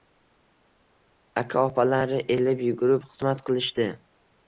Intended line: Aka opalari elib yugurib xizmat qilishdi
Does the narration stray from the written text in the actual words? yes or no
no